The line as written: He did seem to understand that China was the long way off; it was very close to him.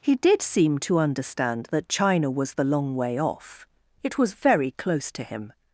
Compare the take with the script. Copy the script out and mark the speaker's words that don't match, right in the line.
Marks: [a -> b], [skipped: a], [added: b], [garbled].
He did seem to understand that China was the long way off; it was very close to him.